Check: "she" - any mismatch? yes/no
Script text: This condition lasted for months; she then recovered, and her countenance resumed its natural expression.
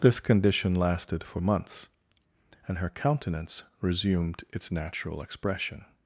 yes